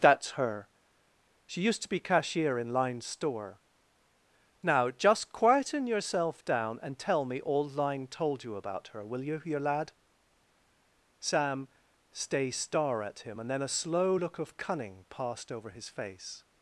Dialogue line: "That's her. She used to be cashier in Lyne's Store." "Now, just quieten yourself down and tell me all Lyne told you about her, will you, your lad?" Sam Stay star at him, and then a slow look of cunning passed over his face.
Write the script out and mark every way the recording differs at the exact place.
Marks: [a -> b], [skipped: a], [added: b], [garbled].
"That's her. She used to be cashier in Lyne's Store." "Now, just quieten yourself down and tell me all Lyne told you about her, will you, your lad?" Sam Stay star at him, and then a slow look of cunning passed over his face.